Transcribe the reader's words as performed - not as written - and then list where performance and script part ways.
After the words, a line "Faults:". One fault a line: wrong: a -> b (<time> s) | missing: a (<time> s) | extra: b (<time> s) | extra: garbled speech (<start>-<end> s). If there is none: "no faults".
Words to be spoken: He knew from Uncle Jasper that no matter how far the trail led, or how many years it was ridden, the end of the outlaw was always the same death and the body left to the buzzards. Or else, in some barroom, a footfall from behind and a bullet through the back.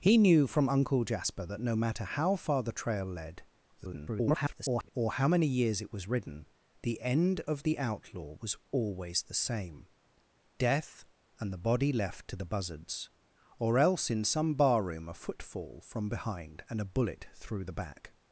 He knew from Uncle Jasper that no matter how far the trail led, [garbled] or how many years it was ridden, the end of the outlaw was always the same death and the body left to the buzzards. Or else, in some barroom, a footfall from behind and a bullet through the back.
Faults:
extra: garbled speech (3.8-4.9 s)